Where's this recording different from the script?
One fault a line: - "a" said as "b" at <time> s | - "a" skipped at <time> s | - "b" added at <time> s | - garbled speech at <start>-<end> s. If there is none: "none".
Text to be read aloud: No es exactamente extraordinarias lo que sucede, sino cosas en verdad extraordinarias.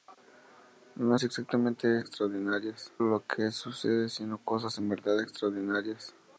none